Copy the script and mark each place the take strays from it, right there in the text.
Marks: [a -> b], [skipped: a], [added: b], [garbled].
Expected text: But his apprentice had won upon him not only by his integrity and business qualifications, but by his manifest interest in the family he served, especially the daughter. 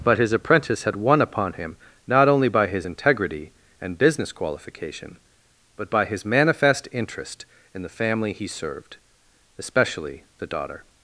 But his apprentice had won upon him not only by his integrity and business [qualifications, -> qualification] but by his manifest interest in the family he served, especially the daughter.